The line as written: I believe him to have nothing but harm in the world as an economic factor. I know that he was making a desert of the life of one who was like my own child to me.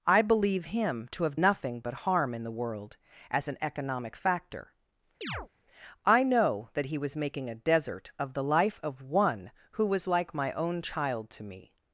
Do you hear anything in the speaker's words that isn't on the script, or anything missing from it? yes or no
no